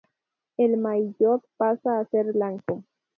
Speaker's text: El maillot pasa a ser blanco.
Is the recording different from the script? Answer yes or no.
no